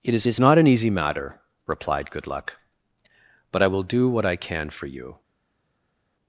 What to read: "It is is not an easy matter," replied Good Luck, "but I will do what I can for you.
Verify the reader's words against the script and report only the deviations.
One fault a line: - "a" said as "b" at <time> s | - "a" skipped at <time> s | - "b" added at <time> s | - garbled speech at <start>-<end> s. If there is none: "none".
none